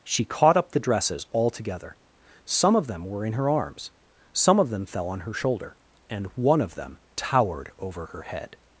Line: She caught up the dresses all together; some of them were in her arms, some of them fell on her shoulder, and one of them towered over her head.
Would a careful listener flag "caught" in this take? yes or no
no